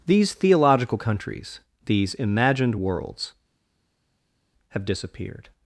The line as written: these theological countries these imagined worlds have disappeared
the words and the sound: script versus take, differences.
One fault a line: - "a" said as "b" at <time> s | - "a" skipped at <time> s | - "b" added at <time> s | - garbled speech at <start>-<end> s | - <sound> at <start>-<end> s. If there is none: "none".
none